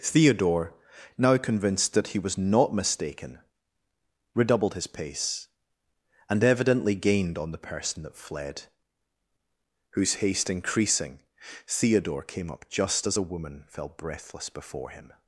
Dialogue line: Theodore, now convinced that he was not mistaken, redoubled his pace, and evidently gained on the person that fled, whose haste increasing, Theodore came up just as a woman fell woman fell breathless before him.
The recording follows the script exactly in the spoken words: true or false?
false